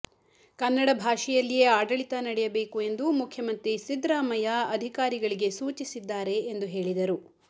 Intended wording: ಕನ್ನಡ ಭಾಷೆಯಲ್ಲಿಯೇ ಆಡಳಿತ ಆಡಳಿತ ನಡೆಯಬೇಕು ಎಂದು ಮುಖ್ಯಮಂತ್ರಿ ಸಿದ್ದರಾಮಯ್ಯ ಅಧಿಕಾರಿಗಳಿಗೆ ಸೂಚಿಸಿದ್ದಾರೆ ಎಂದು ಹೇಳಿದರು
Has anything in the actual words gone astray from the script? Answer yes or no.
yes